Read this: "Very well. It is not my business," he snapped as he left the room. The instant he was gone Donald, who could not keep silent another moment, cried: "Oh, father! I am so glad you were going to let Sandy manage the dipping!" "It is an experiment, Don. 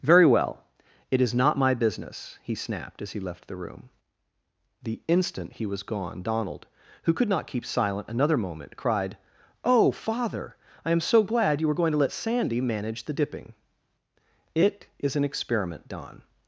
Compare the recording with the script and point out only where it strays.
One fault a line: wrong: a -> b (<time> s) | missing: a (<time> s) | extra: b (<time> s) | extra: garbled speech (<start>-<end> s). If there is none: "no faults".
no faults